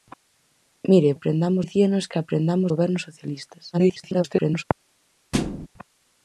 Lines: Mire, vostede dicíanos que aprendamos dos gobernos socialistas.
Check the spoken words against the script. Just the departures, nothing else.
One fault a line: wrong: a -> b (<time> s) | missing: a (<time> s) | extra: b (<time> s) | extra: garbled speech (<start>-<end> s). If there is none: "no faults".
wrong: vostede -> aprendamos (1.1 s)
missing: dos (2.7 s)
extra: garbled speech (3.7-4.6 s)